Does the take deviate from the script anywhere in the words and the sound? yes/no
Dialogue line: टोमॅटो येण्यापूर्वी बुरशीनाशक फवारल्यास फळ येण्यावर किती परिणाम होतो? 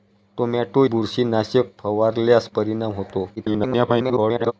yes